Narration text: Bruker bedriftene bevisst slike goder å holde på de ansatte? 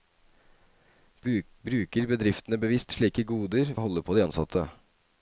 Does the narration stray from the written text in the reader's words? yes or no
no